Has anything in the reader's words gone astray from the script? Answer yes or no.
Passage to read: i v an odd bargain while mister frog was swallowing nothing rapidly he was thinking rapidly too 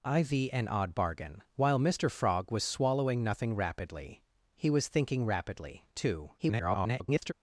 yes